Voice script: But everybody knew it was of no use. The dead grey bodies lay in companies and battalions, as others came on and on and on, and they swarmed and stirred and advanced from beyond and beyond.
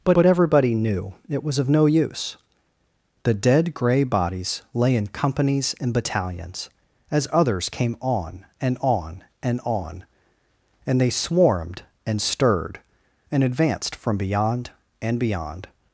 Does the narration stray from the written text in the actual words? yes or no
yes